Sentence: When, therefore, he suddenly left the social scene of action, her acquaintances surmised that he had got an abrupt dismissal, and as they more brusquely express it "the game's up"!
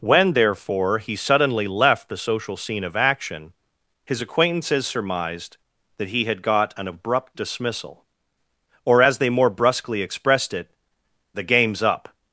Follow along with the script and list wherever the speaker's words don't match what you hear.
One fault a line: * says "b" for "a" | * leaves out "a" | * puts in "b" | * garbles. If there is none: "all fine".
* says "his" for "her"
* says "or" for "and"
* says "expressed" for "express"